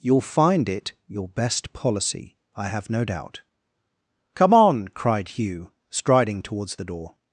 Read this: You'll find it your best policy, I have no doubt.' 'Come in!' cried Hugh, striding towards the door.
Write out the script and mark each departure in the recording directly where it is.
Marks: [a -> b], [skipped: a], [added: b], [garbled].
You'll find it your best policy, I have no doubt.' 'Come [in!' -> on] cried Hugh, striding towards the door.